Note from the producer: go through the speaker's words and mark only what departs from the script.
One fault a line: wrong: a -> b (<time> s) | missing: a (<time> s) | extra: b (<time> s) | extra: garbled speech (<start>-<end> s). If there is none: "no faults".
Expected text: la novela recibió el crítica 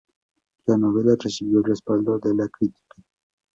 extra: respaldo de la (1.6 s)